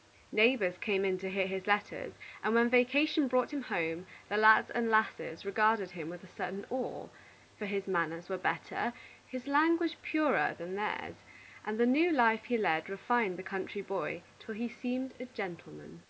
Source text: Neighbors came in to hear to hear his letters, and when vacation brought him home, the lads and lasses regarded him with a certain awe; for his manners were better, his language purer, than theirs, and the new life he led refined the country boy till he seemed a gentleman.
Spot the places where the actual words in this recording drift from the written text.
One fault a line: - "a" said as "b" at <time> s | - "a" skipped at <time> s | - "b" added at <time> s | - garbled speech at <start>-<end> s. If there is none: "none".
- "to hear" skipped at 1.4 s